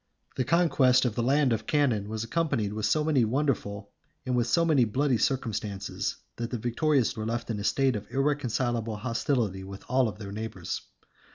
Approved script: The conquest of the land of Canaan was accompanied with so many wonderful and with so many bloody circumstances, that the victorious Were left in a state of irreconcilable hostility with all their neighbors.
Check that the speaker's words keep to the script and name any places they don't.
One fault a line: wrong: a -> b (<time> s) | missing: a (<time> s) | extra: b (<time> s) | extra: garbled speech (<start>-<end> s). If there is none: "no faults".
no faults